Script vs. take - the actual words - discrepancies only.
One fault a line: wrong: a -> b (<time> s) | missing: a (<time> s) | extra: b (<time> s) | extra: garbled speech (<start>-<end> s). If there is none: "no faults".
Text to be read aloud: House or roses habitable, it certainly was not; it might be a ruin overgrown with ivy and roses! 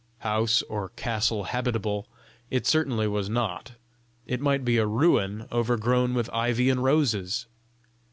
wrong: roses -> castle (0.9 s)